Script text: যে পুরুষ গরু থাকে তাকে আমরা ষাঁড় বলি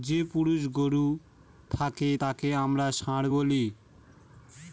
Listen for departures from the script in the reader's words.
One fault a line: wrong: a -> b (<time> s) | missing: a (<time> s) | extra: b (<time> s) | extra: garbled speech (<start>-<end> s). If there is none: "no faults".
no faults